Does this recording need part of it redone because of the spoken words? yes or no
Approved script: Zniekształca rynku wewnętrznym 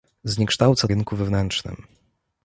no